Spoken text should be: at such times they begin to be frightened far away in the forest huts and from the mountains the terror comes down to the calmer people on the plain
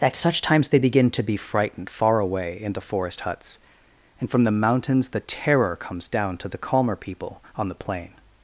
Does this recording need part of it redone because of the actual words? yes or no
no